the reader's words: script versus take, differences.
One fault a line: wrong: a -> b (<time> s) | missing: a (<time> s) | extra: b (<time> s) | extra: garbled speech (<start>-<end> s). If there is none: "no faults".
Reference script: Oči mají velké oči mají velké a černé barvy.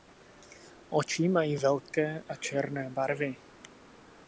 missing: oči mají velké (2.2 s)